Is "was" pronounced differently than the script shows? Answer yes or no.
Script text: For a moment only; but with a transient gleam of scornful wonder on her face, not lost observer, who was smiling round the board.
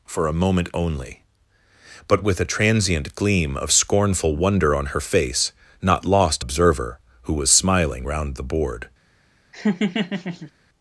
no